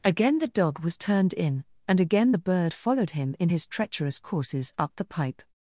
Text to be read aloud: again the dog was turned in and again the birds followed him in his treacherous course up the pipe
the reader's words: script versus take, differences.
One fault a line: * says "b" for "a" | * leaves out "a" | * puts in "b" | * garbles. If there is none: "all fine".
* says "bird" for "birds"
* says "courses" for "course"